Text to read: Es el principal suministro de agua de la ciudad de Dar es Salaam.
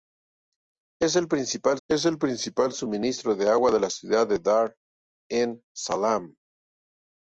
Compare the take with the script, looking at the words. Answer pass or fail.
fail